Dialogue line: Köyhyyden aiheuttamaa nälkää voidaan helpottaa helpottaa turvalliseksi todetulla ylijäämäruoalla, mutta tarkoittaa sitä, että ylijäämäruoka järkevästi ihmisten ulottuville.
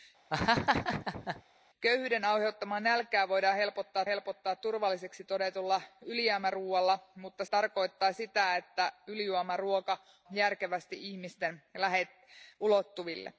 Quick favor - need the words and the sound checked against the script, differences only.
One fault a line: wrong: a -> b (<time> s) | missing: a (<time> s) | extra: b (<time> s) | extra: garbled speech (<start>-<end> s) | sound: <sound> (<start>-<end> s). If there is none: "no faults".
sound: laugh (0.3-1.4 s)